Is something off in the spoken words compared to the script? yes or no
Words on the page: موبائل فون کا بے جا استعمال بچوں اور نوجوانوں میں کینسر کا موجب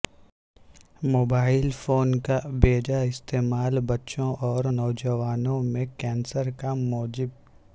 no